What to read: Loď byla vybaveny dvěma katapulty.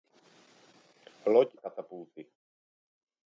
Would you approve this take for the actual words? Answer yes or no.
no